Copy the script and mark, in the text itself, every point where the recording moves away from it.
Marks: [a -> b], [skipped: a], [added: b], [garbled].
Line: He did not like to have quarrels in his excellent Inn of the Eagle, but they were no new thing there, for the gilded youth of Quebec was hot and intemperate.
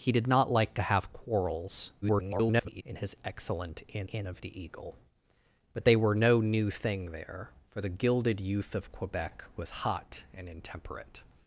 He did not like to have quarrels [garbled] in his excellent Inn [added: Inn] of the Eagle, but they were no new thing there, for the gilded youth of Quebec was hot and intemperate.